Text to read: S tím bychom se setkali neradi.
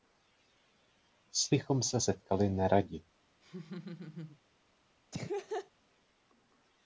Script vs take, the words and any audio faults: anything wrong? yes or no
yes